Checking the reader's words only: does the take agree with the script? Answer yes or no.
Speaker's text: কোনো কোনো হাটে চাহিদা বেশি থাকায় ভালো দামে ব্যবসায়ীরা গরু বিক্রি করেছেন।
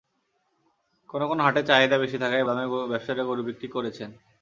no